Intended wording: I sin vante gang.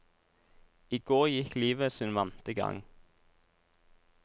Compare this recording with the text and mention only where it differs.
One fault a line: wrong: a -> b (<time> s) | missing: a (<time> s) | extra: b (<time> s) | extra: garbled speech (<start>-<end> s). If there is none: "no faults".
extra: går gikk livet (1.1 s)